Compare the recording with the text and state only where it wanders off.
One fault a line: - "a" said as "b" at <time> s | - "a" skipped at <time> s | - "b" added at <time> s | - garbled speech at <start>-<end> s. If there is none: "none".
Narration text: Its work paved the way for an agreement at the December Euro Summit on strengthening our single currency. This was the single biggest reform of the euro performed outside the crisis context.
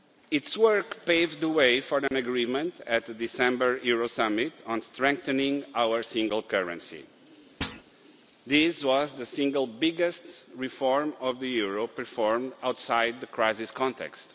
none